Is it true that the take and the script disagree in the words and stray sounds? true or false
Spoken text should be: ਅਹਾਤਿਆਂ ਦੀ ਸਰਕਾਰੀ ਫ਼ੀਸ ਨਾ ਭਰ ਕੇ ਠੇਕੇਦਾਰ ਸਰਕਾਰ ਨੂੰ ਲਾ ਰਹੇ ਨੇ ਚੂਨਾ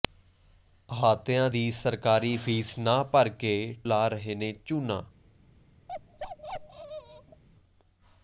true